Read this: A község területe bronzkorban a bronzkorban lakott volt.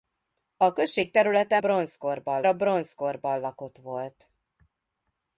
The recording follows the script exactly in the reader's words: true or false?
true